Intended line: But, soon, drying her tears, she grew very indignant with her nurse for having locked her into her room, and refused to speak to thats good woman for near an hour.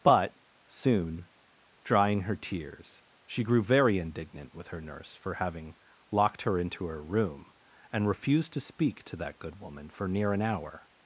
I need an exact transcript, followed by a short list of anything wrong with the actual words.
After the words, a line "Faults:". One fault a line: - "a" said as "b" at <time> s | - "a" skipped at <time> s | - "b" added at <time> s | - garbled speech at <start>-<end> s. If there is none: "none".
But, soon, drying her tears, she grew very indignant with her nurse for having locked her into her room, and refused to speak to that good woman for near an hour.
Faults:
- "thats" said as "that" at 9.2 s